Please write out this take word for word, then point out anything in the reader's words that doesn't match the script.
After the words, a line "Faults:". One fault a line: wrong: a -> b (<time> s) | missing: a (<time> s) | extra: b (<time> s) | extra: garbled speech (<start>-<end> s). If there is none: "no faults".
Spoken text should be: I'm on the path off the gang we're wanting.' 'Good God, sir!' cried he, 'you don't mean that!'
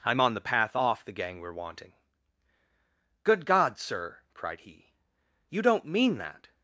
I'm on the path off the gang we're wanting.' 'Good God, sir!' cried he, 'you don't mean that!'
Faults:
no faults